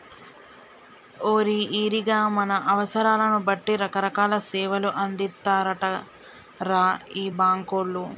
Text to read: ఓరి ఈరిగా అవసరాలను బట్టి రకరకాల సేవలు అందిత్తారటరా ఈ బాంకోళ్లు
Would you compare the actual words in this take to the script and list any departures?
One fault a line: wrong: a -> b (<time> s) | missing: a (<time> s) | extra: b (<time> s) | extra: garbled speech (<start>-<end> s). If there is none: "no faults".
extra: మన (2.4 s)